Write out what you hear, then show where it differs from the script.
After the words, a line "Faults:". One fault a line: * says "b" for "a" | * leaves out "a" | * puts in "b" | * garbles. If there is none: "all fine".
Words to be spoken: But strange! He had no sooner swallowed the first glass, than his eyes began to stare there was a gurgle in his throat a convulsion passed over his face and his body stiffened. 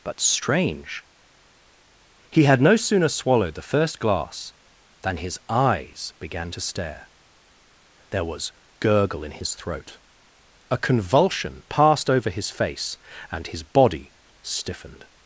But strange! He had no sooner swallowed the first glass, than his eyes began to stare there was gurgle in his throat a convulsion passed over his face and his body stiffened.
Faults:
* leaves out "a"